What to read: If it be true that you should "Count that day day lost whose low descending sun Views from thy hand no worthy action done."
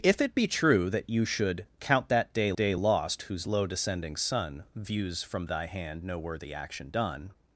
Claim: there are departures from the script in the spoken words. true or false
false